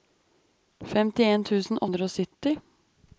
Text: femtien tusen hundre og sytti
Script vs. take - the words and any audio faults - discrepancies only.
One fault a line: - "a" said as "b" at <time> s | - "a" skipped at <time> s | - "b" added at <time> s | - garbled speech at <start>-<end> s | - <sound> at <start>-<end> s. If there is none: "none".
none